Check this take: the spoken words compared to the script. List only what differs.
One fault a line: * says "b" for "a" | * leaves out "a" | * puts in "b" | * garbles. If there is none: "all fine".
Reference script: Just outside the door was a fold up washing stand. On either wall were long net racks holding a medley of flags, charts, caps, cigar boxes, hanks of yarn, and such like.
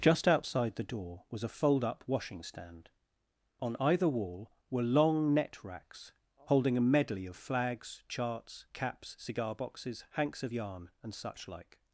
all fine